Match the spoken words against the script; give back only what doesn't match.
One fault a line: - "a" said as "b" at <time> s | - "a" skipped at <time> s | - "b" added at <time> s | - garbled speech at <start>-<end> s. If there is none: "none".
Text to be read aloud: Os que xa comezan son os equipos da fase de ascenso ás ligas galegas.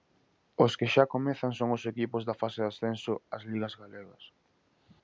none